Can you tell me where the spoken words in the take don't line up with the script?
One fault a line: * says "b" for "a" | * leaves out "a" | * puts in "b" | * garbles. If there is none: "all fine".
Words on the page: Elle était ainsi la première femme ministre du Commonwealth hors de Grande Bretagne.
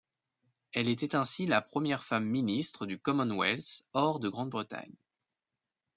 all fine